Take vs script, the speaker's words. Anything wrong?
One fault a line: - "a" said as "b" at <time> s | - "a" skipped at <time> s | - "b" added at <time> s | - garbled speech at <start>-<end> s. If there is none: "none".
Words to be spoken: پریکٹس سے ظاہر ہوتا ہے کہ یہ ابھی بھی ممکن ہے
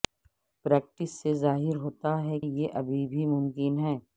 - "کہ" skipped at 2.4 s